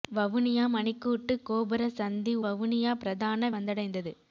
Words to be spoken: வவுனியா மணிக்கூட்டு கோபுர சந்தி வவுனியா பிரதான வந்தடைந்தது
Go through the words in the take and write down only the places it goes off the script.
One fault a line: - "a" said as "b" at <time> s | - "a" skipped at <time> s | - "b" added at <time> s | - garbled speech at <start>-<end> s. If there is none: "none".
none